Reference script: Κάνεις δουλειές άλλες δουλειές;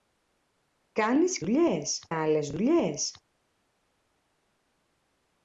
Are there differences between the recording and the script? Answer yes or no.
no